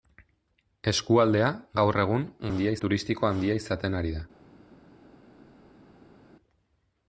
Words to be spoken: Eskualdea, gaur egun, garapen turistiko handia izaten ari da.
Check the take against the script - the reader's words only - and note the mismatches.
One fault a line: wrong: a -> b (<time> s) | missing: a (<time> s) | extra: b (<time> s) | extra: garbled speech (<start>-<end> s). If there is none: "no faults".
wrong: garapen -> handia (2.5 s)